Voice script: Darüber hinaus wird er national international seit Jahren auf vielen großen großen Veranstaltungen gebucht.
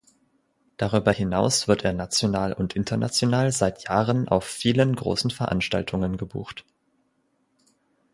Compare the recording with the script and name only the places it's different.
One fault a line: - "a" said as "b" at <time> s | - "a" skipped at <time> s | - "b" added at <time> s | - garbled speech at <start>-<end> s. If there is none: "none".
- "und" added at 2.5 s
- "großen" skipped at 5.3 s